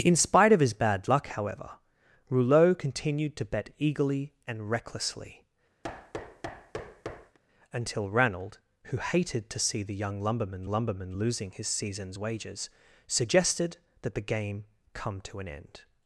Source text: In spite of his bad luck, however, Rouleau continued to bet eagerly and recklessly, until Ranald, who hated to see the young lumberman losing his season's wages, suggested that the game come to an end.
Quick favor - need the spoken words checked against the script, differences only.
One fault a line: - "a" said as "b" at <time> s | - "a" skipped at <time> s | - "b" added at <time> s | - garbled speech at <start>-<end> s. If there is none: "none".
- "lumberman" added at 10.7 s